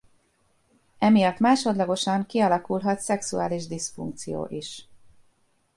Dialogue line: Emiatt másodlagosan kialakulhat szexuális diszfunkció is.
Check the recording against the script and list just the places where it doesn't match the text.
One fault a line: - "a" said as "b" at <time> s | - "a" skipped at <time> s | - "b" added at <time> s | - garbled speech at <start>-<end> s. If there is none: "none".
none